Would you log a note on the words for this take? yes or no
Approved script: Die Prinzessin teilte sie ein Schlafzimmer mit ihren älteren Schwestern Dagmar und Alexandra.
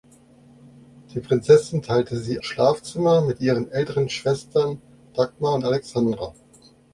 yes